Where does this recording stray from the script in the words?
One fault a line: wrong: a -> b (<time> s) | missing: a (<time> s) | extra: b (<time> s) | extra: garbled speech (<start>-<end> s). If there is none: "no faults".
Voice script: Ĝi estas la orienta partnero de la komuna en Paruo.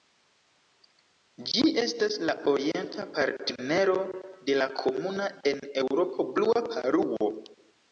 extra: Eŭropo Blua (5.8 s)